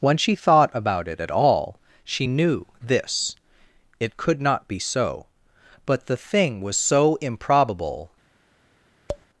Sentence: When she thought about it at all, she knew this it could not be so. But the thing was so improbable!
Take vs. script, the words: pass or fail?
pass